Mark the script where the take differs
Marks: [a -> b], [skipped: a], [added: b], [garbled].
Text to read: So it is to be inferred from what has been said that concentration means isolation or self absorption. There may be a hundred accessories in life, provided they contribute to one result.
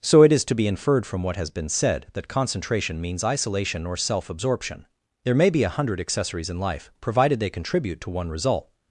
So it is to be inferred from what has been said that concentration means isolation or self absorption. There may be a hundred accessories in life, provided they contribute to one result.